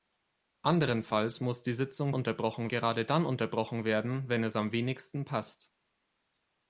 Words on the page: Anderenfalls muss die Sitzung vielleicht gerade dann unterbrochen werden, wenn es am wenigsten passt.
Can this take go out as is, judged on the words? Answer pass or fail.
fail